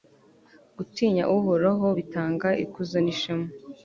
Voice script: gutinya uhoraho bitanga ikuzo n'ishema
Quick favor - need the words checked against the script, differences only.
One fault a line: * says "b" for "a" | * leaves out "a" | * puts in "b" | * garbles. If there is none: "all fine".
all fine